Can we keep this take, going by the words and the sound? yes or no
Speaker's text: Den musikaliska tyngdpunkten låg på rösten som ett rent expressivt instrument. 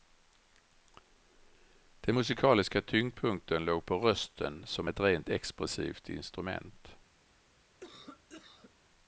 no